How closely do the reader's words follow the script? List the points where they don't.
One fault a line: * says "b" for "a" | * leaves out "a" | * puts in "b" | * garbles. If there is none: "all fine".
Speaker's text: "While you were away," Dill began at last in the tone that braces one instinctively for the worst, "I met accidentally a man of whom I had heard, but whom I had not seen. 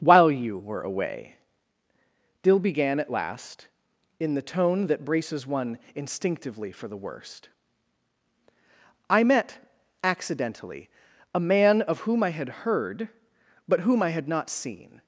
all fine